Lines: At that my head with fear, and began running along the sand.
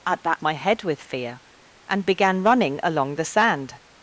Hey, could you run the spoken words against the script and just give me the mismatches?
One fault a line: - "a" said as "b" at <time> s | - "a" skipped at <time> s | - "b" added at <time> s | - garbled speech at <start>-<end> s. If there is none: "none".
none